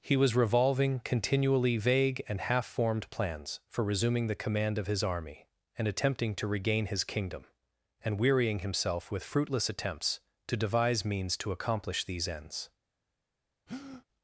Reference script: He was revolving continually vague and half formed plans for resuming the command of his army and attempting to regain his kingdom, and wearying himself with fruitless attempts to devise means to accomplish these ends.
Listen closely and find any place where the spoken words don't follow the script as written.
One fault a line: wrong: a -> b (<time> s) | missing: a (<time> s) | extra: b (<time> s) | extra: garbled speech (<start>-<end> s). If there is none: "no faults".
no faults